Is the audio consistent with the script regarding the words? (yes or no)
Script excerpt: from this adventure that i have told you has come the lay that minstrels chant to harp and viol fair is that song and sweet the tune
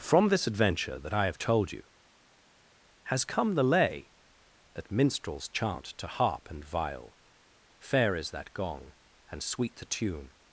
no